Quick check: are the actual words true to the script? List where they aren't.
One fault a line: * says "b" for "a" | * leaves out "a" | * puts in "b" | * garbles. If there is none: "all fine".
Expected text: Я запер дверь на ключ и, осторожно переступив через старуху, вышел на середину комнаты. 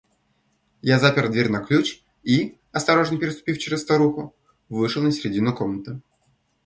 all fine